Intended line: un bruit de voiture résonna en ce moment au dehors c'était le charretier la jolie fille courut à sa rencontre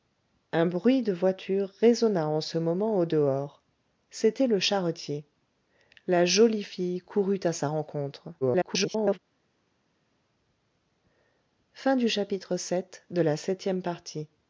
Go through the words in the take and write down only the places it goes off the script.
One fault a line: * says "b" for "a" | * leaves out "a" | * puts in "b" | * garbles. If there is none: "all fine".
* garbles